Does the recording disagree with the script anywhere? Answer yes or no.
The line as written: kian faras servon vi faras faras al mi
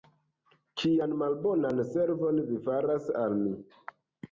yes